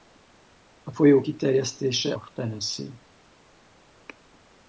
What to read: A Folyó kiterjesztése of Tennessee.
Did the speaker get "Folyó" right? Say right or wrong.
right